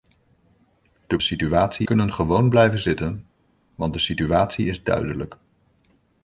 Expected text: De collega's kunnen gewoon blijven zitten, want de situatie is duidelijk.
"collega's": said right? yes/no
no